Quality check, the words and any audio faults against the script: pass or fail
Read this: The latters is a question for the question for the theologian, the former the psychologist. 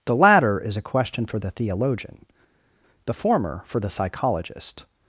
fail